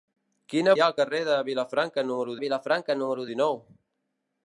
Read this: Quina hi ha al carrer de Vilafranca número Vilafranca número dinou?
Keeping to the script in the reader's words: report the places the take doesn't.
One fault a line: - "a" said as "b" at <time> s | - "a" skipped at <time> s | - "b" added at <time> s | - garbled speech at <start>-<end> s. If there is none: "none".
none